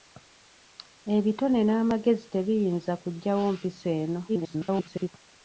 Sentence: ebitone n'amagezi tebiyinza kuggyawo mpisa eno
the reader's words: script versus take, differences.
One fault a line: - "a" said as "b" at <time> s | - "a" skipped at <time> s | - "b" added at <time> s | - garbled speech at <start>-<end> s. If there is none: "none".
- garbled speech at 4.3-5.1 s